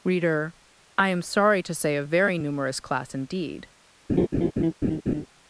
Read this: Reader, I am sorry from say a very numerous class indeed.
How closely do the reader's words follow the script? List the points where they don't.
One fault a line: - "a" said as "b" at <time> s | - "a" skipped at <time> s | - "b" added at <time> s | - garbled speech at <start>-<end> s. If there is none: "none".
- "from" said as "to" at 1.6 s